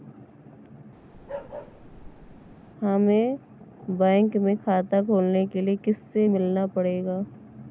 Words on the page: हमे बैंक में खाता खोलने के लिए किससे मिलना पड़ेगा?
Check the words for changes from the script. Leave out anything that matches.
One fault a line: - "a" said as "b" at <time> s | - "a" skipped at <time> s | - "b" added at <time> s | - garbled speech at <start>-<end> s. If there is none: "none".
none